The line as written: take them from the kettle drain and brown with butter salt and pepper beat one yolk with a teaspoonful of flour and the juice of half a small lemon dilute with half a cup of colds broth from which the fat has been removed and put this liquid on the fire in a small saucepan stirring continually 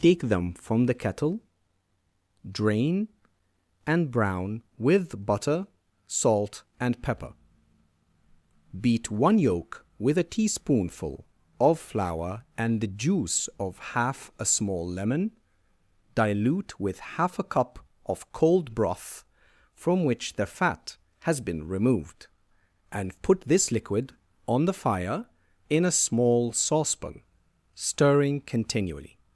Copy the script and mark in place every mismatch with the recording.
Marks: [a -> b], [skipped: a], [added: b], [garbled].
take them from the kettle drain and brown with butter salt and pepper beat one yolk with a teaspoonful of flour and the juice of half a small lemon dilute with half a cup of [colds -> cold] broth from which the fat has been removed and put this liquid on the fire in a small saucepan stirring continually